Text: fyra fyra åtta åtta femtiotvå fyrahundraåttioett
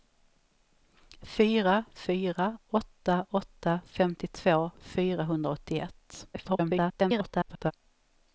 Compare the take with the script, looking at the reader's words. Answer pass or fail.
fail